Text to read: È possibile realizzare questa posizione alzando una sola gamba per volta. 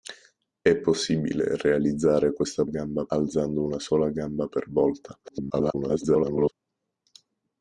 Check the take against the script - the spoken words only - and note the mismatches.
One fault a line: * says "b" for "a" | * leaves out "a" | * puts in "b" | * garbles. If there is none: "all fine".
* says "gamba" for "posizione"
* garbles